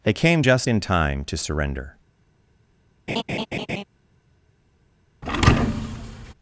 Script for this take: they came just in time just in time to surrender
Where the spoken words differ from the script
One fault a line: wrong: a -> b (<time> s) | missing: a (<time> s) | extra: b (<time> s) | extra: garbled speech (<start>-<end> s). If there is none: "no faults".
missing: just in time (1.2 s)